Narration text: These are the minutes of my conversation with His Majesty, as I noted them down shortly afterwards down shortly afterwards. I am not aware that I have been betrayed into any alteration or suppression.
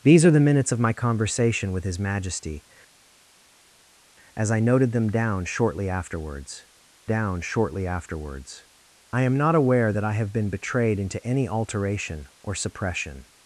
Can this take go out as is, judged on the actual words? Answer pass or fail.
pass